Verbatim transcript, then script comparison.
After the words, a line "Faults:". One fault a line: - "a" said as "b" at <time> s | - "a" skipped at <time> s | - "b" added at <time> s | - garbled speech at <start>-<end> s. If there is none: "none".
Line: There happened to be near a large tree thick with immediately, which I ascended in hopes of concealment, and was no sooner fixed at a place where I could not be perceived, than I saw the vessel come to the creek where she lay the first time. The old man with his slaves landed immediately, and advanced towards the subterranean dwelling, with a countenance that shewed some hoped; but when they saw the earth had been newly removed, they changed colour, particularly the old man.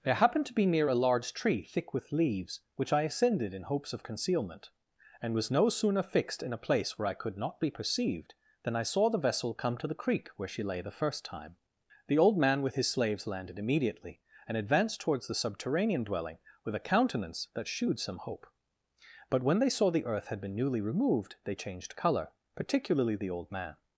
There happened to be near a large tree thick with leaves, which I ascended in hopes of concealment, and was no sooner fixed in a place where I could not be perceived, than I saw the vessel come to the creek where she lay the first time. The old man with his slaves landed immediately, and advanced towards the subterranean dwelling, with a countenance that shewed some hope; but when they saw the earth had been newly removed, they changed colour, particularly the old man.
Faults:
- "immediately" said as "leaves" at 2.1 s
- "at" said as "in" at 6.4 s
- "hoped" said as "hope" at 18.2 s